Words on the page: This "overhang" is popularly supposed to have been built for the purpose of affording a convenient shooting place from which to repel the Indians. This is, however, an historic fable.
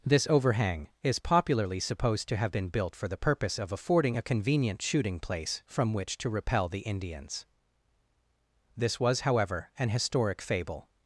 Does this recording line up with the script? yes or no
no